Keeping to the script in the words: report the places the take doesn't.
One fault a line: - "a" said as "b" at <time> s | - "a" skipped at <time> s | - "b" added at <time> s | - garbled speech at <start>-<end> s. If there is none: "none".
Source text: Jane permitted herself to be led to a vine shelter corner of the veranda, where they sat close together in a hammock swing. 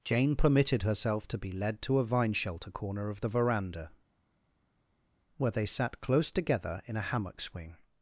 none